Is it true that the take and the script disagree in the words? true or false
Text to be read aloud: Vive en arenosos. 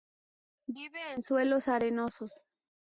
true